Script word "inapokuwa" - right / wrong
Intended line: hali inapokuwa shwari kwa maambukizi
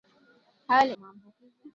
wrong